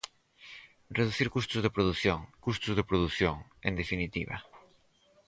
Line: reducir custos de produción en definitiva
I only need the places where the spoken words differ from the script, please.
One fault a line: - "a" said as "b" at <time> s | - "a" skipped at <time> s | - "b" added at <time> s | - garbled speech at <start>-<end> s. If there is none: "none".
- "custos de produción" added at 2.5 s